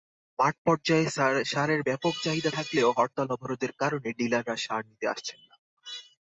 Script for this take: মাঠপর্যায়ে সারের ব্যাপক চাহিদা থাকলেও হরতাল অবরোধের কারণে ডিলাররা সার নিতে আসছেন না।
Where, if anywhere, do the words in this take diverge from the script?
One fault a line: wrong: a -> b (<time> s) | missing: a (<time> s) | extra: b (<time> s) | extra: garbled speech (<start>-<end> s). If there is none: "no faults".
no faults